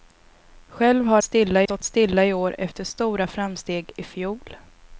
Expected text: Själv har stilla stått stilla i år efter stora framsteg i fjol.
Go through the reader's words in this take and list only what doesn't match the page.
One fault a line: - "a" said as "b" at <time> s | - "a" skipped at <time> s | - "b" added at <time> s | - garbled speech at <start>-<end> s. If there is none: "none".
none